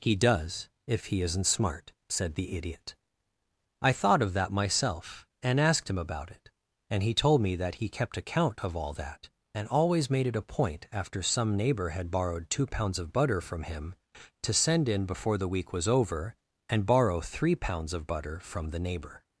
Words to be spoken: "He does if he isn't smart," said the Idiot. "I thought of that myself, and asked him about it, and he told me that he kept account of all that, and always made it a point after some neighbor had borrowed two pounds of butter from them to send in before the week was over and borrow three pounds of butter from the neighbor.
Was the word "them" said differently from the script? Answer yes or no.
yes